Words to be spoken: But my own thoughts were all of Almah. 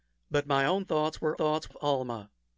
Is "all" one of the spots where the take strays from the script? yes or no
yes